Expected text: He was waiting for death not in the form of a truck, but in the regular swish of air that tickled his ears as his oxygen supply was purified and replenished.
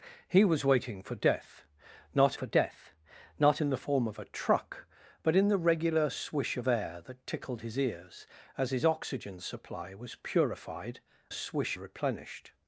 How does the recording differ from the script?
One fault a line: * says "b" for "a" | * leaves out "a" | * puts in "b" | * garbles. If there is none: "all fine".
* puts in "for death not"
* says "swish" for "and"